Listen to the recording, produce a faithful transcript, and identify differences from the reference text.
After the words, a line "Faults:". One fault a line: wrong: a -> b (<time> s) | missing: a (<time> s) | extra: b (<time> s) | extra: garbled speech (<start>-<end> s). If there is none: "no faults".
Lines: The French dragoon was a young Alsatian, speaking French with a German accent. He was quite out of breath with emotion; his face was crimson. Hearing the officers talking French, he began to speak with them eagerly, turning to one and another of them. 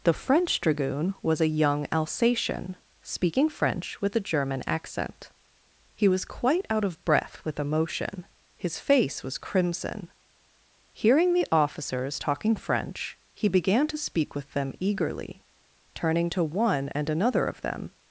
The French dragoon was a young Alsatian, speaking French with a German accent. He was quite out of breath with emotion; his face was crimson. Hearing the officers talking French, he began to speak with them eagerly, turning to one and another of them.
Faults:
no faults